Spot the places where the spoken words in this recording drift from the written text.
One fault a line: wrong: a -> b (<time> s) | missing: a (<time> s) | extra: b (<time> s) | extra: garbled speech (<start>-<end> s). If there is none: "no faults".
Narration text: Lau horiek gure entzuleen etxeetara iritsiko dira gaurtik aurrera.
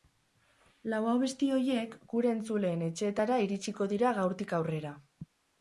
extra: abesti (1.1 s)